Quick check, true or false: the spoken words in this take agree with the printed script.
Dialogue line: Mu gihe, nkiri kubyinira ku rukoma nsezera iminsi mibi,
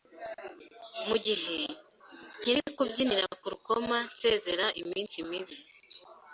true